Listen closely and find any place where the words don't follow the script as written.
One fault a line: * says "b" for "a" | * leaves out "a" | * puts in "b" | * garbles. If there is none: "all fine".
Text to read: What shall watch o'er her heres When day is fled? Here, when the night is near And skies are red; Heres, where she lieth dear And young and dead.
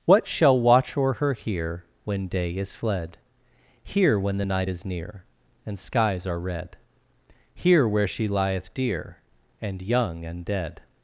* says "here" for "heres"
* says "Here" for "Heres"